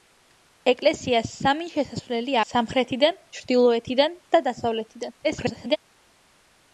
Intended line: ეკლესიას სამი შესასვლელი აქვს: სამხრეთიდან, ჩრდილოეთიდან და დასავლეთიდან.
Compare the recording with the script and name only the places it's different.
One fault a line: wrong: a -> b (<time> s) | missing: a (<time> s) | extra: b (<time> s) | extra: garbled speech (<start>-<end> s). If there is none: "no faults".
missing: აქვს (2.4 s)
extra: garbled speech (5.2-5.8 s)